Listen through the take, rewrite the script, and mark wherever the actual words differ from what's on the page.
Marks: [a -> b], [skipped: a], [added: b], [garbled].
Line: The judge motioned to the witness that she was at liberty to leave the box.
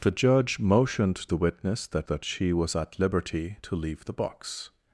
The judge motioned [skipped: to] the witness that [added: that] she was at liberty to leave the box.